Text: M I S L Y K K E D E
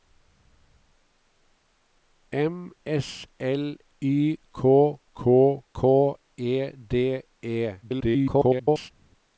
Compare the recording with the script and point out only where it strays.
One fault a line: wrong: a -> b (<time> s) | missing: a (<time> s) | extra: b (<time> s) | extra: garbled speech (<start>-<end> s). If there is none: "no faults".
missing: I (2.7 s)
extra: K (5.7 s)
extra: garbled speech (7.8-8.9 s)